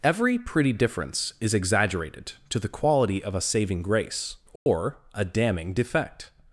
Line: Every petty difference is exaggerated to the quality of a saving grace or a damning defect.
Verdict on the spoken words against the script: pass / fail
fail